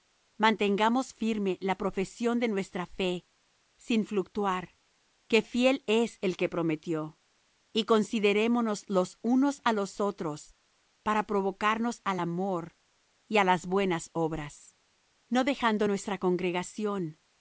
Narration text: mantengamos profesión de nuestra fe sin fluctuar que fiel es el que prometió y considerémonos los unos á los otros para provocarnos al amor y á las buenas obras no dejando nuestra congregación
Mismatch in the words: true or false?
true